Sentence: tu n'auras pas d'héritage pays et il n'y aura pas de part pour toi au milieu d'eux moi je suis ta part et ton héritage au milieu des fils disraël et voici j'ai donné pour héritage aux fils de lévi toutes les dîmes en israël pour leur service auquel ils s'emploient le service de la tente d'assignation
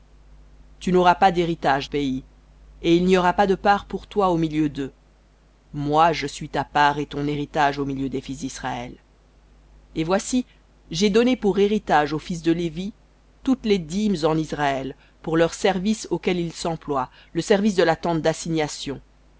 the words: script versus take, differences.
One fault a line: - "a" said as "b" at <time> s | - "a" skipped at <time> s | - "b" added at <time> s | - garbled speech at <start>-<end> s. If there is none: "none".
none